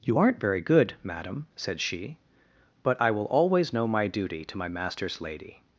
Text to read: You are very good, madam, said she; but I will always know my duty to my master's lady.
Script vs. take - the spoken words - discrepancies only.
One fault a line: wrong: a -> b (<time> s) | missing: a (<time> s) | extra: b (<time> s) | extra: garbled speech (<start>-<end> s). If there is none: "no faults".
wrong: are -> aren't (0.2 s)